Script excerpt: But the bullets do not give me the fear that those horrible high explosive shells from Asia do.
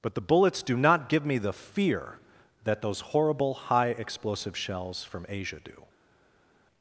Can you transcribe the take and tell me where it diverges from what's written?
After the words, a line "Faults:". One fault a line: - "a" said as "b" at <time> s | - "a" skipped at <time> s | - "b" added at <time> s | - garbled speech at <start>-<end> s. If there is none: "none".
But the bullets do not give me the fear that those horrible high explosive shells from Asia do.
Faults:
none